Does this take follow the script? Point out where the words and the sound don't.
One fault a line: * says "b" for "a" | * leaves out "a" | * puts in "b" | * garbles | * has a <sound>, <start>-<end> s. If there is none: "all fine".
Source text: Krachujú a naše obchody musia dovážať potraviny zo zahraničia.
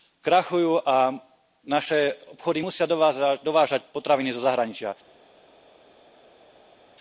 all fine